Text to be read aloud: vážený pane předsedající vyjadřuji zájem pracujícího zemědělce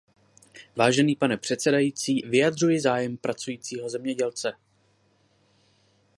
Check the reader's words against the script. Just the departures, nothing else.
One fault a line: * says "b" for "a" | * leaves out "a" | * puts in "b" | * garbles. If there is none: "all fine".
all fine